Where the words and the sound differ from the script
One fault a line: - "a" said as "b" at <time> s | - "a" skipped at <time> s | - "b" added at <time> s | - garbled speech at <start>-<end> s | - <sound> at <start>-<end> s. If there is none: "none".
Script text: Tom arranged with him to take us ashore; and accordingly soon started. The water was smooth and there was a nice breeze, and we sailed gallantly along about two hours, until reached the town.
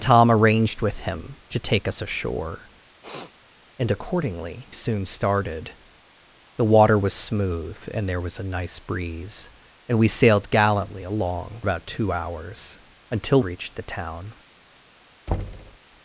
- sniff at 3.0-3.3 s
- thud at 15.3-15.8 s